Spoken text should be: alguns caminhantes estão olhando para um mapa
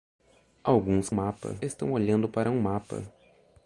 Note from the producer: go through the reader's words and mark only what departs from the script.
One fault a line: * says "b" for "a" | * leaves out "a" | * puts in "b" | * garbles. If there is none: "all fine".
* says "mapa" for "caminhantes"